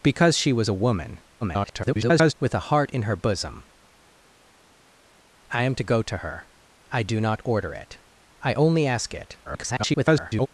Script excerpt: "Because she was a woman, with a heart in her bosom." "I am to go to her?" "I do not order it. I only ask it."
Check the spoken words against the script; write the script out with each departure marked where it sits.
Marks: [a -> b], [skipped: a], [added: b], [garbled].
"Because she was a woman, [garbled] with a heart in her bosom." "I am to go to her?" "I do not order it. I only ask it." [garbled]